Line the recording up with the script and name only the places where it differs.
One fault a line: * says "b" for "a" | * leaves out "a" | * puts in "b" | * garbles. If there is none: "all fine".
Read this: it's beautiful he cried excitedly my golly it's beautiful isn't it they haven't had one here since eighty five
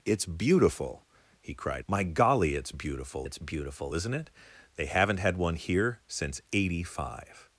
* leaves out "excitedly"
* puts in "it's beautiful"